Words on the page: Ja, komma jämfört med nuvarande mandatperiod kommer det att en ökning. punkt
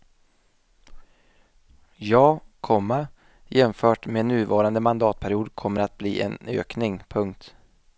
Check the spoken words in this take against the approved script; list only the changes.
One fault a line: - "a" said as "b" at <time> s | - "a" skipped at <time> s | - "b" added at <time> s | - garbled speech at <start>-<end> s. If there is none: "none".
- "bli" added at 6.0 s